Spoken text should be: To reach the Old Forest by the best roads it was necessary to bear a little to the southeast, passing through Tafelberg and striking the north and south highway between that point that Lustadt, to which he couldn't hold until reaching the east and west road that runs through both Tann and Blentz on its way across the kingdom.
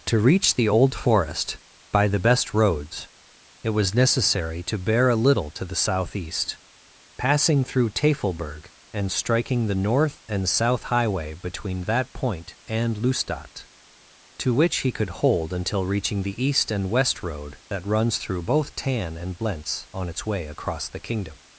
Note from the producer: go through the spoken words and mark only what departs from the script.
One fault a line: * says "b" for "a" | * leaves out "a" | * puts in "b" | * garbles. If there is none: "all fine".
* says "and" for "that"
* says "could" for "couldn't"